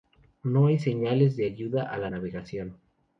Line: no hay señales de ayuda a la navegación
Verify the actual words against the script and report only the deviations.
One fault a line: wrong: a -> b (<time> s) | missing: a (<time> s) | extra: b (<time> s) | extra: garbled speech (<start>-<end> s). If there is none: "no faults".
no faults